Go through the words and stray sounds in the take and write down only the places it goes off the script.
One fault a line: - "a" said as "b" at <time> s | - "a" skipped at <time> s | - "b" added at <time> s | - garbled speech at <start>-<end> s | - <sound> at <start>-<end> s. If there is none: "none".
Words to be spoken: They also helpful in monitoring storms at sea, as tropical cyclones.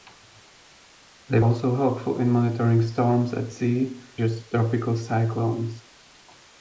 none